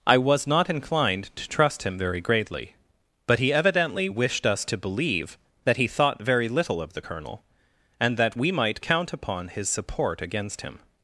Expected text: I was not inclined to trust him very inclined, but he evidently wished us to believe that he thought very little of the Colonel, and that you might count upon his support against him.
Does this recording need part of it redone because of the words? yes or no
yes